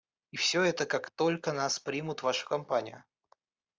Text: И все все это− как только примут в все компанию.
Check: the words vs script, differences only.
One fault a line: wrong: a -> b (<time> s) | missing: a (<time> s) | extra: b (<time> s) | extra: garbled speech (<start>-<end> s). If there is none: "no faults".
missing: все (0.6 s)
extra: нас (1.5 s)
wrong: все -> вашу (2.2 s)